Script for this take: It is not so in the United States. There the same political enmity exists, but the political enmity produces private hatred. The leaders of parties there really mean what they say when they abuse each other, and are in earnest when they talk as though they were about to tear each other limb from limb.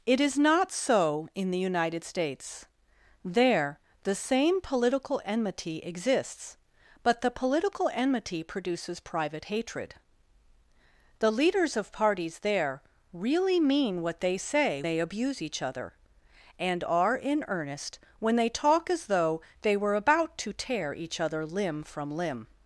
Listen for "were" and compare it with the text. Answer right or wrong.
right